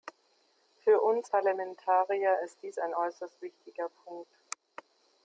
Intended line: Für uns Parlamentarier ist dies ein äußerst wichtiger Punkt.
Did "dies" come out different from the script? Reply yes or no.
no